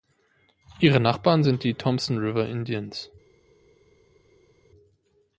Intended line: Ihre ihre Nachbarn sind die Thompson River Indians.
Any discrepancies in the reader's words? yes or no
yes